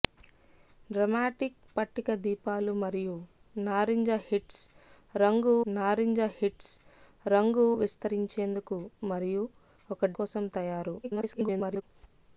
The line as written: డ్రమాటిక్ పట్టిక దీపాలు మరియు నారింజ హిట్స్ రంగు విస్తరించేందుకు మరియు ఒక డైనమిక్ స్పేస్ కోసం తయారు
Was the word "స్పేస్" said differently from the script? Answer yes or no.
yes